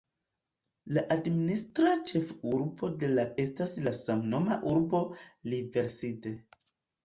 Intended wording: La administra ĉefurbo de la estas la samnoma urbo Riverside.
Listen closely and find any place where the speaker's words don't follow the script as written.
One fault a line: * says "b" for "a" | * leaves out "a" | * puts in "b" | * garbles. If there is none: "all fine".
all fine